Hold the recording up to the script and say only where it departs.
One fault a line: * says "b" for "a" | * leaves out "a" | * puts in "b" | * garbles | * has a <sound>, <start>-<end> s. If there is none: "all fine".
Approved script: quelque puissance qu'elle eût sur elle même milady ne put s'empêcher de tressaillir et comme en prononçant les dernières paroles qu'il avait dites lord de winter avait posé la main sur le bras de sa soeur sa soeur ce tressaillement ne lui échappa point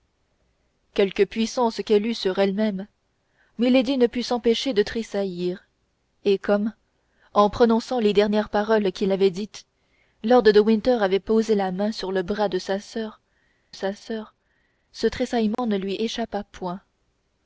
* has a dropout, 15.5-15.6 s